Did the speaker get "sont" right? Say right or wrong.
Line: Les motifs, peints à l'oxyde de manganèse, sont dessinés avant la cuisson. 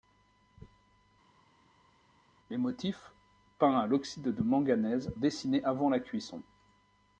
wrong